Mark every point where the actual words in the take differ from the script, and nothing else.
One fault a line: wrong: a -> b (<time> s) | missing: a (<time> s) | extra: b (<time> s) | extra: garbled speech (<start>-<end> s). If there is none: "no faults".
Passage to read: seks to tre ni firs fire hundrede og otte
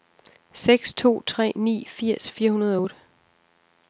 no faults